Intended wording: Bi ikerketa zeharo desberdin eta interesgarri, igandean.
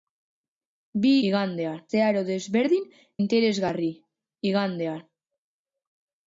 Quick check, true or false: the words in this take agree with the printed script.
false